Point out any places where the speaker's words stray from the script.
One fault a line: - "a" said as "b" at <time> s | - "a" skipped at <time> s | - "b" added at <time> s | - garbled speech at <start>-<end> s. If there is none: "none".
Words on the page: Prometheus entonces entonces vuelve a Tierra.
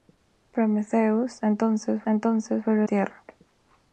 none